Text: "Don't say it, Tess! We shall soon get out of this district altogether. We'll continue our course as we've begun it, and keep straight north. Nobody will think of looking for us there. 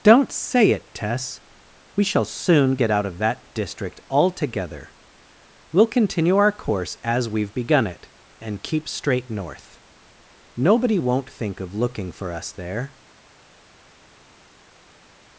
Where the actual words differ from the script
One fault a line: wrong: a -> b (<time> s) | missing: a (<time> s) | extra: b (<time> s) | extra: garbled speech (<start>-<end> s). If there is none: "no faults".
wrong: this -> that (3.2 s)
wrong: will -> won't (10.9 s)